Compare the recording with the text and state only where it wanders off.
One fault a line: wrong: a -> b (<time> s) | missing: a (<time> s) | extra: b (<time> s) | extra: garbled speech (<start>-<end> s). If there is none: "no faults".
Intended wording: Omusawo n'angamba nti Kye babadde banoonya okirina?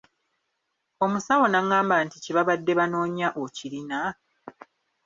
no faults